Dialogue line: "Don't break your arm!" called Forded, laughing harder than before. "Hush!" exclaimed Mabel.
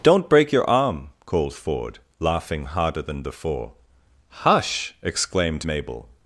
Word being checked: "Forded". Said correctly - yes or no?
no